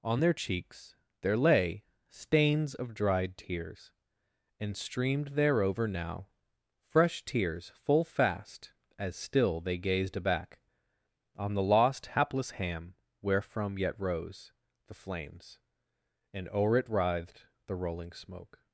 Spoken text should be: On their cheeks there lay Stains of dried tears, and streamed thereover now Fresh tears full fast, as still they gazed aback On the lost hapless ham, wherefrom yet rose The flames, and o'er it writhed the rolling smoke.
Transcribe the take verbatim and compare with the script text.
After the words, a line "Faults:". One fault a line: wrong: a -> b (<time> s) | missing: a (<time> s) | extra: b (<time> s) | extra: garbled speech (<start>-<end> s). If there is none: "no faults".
On their cheeks there lay Stains of dried tears, and streamed thereover now Fresh tears full fast, as still they gazed aback On the lost hapless ham, wherefrom yet rose The flames, and o'er it writhed the rolling smoke.
Faults:
no faults